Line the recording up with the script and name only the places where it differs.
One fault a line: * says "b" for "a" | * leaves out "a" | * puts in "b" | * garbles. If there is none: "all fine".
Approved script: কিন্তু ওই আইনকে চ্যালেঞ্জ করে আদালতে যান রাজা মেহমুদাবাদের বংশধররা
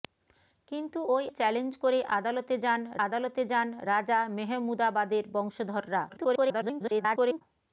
* leaves out "আইনকে"
* puts in "আদালতে যান"
* garbles